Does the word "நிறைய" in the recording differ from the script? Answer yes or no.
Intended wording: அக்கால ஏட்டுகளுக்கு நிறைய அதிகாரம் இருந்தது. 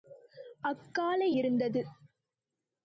yes